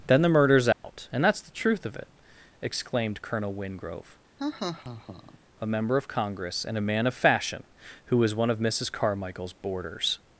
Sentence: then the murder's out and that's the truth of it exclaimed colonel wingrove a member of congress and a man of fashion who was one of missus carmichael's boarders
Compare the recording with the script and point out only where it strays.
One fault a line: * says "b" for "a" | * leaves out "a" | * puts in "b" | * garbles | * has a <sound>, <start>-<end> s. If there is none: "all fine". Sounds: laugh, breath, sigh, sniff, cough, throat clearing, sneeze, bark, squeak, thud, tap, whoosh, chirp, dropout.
* has a dropout, 0.7-0.8 s
* has a laugh, 4.4-5.4 s